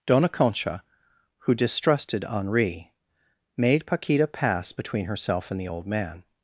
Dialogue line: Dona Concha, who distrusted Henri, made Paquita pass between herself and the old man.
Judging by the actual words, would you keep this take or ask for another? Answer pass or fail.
pass